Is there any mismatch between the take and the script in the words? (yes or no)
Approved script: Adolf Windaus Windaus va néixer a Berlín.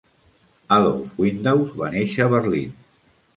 yes